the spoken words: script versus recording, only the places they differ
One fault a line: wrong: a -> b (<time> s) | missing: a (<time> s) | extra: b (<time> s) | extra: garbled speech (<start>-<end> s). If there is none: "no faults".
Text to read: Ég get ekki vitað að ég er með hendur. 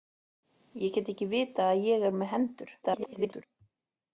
extra: garbled speech (2.8-3.5 s)